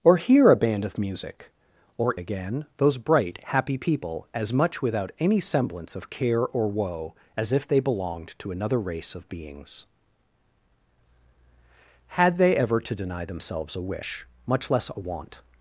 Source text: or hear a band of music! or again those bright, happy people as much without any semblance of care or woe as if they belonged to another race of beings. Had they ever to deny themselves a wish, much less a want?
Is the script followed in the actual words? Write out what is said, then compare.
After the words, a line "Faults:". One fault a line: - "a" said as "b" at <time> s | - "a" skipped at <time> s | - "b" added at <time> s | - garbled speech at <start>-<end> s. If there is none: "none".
or hear a band of music! or again those bright, happy people as much without any semblance of care or woe as if they belonged to another race of beings. Had they ever to deny themselves a wish, much less a want?
Faults:
none